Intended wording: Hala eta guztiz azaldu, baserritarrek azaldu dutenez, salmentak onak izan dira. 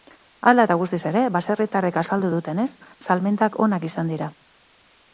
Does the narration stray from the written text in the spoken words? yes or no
yes